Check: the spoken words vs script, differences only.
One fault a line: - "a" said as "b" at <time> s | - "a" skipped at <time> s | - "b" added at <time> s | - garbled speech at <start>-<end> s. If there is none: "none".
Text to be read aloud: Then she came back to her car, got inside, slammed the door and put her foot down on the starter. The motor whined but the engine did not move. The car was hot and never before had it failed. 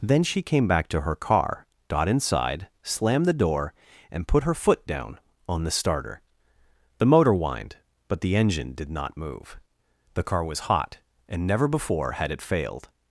none